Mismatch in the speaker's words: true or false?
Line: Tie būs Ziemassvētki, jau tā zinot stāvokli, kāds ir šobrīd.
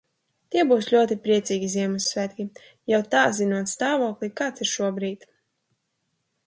true